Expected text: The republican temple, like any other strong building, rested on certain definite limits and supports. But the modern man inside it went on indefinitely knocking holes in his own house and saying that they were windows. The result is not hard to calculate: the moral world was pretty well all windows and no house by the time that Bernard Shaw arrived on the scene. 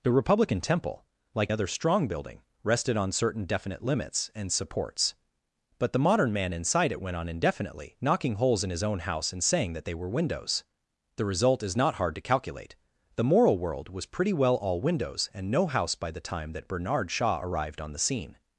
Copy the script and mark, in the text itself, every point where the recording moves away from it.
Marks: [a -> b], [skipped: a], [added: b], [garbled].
The republican temple, like [skipped: any] other strong building, rested on certain definite limits and supports. But the modern man inside it went on indefinitely knocking holes in his own house and saying that they were windows. The result is not hard to calculate: the moral world was pretty well all windows and no house by the time that Bernard Shaw arrived on the scene.